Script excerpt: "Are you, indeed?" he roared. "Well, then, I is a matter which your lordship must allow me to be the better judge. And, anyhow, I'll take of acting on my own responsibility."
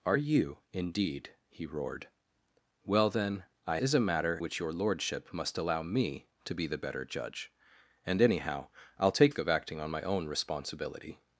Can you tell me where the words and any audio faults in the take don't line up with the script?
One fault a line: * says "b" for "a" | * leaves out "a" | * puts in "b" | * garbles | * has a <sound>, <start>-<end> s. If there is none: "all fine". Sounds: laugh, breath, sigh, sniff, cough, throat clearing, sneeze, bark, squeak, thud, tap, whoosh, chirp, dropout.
all fine